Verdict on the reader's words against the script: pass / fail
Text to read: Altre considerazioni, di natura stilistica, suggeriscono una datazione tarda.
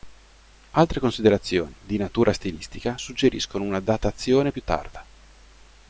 fail